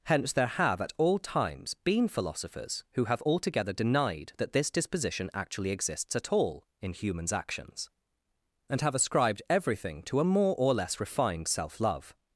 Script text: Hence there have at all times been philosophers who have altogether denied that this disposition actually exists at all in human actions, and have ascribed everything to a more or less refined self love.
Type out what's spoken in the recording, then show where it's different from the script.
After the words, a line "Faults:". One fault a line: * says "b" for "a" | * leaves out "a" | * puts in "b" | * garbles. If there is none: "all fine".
Hence there have at all times been philosophers who have altogether denied that this disposition actually exists at all in humans actions, and have ascribed everything to a more or less refined self love.
Faults:
* says "humans" for "human"